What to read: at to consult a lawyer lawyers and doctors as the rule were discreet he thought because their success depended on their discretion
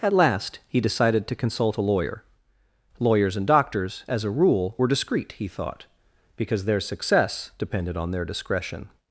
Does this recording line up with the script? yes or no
no